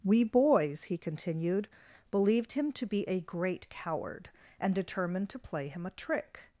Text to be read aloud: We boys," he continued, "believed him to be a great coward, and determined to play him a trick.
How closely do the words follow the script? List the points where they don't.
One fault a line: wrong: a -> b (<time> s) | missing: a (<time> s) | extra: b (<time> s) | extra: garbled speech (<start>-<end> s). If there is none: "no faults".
no faults